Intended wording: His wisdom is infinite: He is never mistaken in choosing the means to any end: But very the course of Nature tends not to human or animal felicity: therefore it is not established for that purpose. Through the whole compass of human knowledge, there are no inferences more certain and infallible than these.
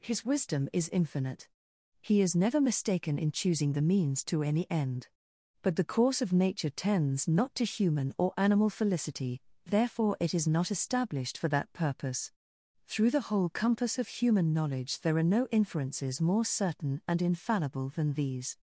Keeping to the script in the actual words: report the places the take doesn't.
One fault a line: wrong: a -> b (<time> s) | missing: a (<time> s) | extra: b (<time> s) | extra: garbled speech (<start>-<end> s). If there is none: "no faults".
missing: very (5.8 s)